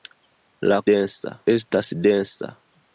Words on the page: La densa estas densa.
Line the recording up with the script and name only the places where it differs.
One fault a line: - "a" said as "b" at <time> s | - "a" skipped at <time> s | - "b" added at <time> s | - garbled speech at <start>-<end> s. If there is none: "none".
none